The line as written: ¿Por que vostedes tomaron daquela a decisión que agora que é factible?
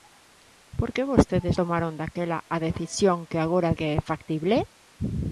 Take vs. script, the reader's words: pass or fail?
pass